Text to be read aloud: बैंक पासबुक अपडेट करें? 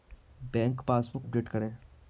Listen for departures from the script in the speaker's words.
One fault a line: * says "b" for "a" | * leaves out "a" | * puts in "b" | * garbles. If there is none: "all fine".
all fine